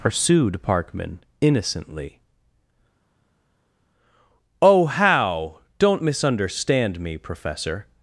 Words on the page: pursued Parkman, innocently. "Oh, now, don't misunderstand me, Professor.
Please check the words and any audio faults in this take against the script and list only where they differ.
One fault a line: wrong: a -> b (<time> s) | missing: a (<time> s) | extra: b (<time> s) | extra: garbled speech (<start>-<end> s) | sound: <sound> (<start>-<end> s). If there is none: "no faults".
wrong: now -> how (4.8 s)